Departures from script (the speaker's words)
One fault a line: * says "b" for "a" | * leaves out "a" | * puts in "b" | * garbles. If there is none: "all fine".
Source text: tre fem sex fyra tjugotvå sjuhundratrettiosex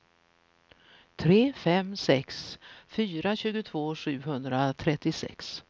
all fine